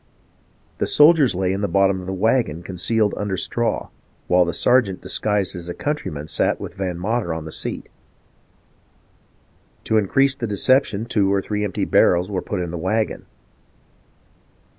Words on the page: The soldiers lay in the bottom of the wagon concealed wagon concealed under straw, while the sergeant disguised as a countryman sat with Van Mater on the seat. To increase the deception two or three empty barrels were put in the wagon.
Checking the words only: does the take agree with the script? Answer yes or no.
no